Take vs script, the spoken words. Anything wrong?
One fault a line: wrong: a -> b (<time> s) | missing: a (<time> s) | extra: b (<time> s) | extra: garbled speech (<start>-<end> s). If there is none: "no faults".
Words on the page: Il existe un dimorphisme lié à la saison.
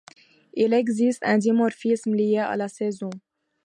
no faults